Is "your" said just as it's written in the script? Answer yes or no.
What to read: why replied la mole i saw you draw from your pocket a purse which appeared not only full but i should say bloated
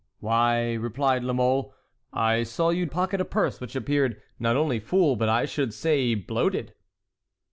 no